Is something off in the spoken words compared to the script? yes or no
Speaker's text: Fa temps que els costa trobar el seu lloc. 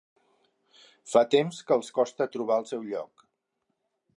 no